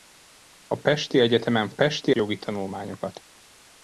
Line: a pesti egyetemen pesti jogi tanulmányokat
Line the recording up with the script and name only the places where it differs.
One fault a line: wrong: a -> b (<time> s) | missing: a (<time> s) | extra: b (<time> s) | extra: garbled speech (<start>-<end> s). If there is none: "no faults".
no faults